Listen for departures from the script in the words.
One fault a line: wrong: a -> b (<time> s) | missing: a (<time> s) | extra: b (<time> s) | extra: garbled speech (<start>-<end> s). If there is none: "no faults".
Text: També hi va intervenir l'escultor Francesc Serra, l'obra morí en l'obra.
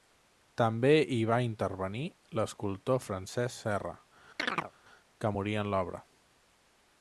wrong: l'obra -> que (5.2 s)